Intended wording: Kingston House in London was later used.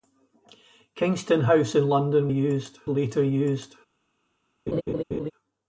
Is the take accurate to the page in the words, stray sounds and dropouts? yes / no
no